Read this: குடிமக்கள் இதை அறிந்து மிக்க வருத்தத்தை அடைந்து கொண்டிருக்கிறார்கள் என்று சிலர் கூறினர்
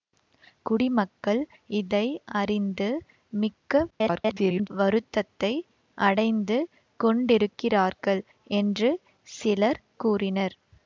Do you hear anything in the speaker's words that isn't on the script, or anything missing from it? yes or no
yes